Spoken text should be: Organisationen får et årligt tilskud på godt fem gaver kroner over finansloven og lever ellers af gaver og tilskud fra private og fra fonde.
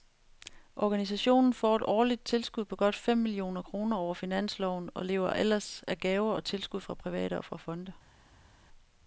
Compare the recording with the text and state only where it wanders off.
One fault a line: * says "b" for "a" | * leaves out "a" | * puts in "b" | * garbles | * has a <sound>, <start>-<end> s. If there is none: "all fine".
* says "millioner" for "gaver"